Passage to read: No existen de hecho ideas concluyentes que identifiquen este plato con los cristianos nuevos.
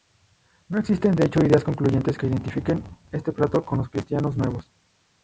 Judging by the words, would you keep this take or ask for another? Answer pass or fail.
pass